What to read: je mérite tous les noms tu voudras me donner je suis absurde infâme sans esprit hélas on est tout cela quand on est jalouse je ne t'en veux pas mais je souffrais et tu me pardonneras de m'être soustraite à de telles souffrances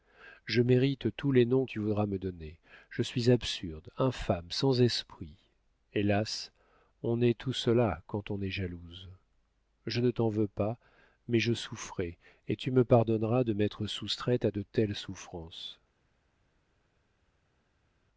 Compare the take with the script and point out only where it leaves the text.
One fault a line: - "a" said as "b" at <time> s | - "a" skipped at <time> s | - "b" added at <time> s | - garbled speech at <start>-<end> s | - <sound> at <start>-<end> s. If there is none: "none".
none